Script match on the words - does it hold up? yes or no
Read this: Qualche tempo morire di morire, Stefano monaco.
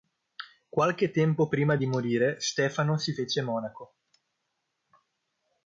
no